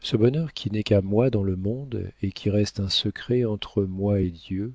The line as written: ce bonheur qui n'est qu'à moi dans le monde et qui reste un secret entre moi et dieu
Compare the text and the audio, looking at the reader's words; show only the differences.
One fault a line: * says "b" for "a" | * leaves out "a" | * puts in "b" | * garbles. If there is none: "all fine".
all fine